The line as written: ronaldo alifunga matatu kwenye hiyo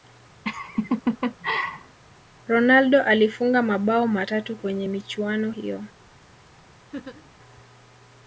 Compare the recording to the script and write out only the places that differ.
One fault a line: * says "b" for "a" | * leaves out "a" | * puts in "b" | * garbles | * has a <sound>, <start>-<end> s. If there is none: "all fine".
* has a laugh, 0.4-2.0 s
* puts in "mabao"
* puts in "michuano"
* has a laugh, 6.9-7.3 s